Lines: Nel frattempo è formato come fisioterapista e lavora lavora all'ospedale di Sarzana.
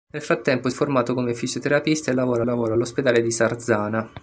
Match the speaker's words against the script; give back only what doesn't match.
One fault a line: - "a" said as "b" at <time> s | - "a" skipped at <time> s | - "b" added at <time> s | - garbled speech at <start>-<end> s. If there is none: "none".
none